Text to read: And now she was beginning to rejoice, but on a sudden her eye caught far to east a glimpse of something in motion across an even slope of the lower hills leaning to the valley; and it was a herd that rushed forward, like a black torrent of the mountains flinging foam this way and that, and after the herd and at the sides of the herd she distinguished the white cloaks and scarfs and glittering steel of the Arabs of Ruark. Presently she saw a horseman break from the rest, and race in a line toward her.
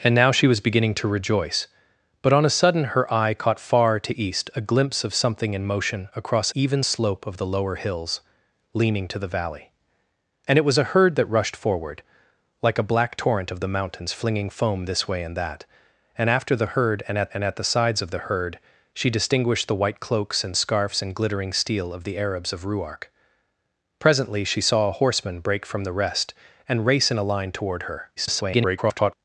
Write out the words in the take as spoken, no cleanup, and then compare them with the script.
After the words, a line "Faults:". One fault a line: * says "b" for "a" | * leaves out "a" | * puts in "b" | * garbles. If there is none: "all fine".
And now she was beginning to rejoice, but on a sudden her eye caught far to east a glimpse of something in motion across even slope of the lower hills leaning to the valley; and it was a herd that rushed forward, like a black torrent of the mountains flinging foam this way and that, and after the herd and at and at the sides of the herd she distinguished the white cloaks and scarfs and glittering steel of the Arabs of Ruark. Presently she saw a horseman break from the rest, and race in a line toward her. [garbled]
Faults:
* leaves out "an"
* puts in "and at"
* garbles